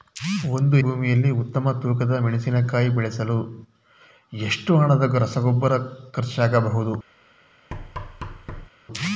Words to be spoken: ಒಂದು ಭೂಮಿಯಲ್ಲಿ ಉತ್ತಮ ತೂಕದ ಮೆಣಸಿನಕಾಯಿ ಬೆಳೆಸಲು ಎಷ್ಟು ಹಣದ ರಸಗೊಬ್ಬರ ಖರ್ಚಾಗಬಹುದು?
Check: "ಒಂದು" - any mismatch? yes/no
no